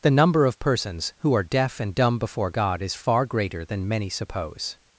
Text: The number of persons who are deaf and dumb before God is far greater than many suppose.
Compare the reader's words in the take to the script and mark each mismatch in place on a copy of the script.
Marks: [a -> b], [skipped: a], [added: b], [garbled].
The number of persons who are deaf and dumb before God is far greater than many suppose.